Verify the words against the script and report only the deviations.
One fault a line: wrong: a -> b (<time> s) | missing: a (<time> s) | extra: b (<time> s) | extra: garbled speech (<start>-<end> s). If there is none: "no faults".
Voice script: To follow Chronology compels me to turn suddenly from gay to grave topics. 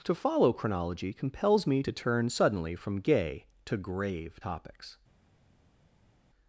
no faults